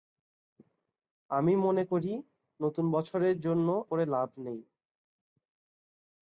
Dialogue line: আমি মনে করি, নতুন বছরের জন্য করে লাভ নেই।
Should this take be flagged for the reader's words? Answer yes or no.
no